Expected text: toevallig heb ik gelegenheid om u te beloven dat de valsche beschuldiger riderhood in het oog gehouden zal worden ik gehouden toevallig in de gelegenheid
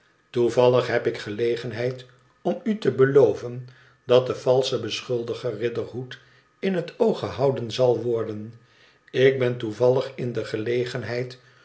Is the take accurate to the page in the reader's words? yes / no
no